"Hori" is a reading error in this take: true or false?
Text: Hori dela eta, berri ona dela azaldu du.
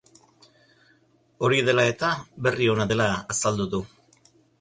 false